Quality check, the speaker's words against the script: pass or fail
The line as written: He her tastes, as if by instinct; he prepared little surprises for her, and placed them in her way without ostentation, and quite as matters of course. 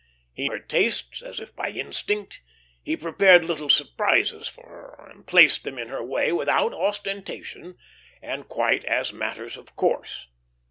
pass